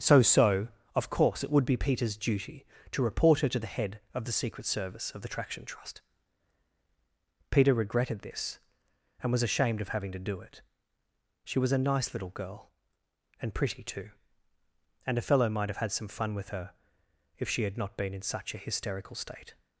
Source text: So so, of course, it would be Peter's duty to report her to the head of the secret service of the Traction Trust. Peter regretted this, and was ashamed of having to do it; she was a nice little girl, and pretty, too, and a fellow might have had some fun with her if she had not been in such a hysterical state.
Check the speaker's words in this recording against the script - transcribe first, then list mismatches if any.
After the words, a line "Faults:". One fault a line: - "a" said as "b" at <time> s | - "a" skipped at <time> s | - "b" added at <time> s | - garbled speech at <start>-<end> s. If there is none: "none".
So so, of course, it would be Peter's duty to report her to the head of the secret service of the Traction Trust. Peter regretted this, and was ashamed of having to do it; she was a nice little girl, and pretty, too, and a fellow might have had some fun with her if she had not been in such a hysterical state.
Faults:
none